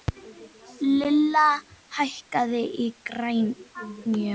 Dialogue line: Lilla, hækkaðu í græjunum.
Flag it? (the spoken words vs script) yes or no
no